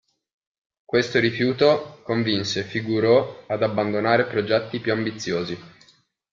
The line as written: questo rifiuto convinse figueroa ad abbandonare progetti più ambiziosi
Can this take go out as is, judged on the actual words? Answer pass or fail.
pass